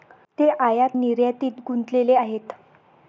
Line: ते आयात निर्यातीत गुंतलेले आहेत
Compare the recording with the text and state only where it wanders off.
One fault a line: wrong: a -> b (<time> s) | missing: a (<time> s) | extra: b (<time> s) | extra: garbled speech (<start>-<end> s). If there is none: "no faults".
no faults